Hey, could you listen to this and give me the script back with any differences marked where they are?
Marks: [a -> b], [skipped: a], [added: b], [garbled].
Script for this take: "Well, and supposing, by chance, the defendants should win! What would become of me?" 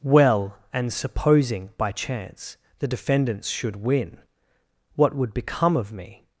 "Well, and supposing, by chance, the defendants should win! What would become of me?"